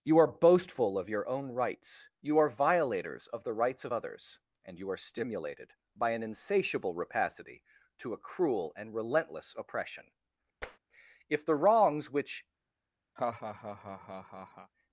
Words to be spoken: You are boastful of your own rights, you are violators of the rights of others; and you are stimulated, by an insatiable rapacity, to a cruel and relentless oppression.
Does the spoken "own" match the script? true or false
true